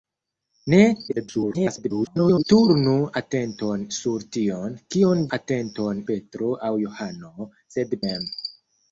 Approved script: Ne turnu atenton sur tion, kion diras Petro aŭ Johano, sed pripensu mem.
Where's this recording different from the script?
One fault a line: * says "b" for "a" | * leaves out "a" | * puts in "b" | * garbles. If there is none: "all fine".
* garbles
* says "atenton" for "diras"
* leaves out "pripensu"